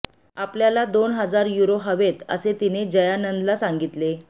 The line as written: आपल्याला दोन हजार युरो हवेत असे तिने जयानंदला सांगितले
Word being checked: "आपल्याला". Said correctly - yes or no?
yes